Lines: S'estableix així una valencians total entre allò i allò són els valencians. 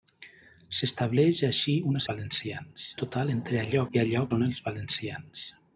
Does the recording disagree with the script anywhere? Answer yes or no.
no